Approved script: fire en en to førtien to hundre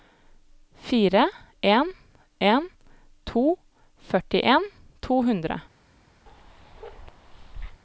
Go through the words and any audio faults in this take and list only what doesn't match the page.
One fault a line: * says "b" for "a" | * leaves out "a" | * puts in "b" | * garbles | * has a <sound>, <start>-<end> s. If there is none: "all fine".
* has a bark, 6.3-7.8 s